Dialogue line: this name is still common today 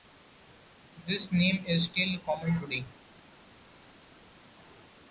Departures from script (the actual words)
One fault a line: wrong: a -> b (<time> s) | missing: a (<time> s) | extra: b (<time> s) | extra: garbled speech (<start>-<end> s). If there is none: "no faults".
no faults